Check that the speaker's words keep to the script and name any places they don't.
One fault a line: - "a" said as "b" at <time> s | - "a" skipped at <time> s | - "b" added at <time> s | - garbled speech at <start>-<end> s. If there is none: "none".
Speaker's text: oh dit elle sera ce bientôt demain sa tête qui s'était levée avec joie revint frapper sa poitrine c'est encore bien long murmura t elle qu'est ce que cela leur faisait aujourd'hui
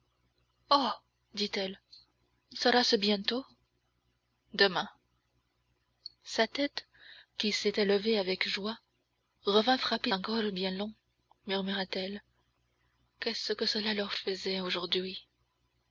- "sa poitrine c'est" skipped at 10.1 s